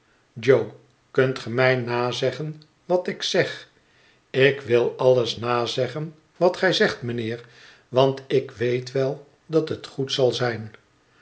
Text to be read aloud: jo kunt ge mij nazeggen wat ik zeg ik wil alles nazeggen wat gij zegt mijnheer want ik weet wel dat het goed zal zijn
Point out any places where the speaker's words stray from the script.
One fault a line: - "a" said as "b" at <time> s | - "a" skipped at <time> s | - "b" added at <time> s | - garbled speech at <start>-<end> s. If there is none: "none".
none